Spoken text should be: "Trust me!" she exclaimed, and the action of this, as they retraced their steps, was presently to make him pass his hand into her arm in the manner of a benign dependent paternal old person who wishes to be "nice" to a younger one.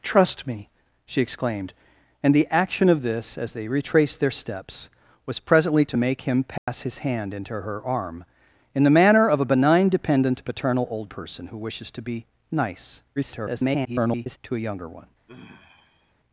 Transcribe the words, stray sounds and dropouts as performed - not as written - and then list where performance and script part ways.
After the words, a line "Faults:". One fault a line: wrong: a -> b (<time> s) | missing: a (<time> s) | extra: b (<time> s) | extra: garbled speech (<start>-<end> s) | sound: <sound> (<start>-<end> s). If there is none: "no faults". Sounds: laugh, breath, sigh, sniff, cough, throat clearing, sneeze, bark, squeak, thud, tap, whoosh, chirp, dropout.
"Trust me!" she exclaimed, and the action of this, as they retraced their steps, was presently to make him pass his hand into her arm in the manner of a benign dependent paternal old person who wishes to be "nice" [garbled] to a younger one.
Faults:
sound: dropout (6.6-6.7 s)
extra: garbled speech (13.2-14.4 s)
sound: sigh (15.3-16.1 s)